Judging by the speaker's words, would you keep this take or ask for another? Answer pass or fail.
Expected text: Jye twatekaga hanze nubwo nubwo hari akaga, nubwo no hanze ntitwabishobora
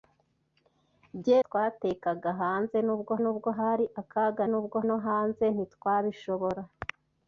pass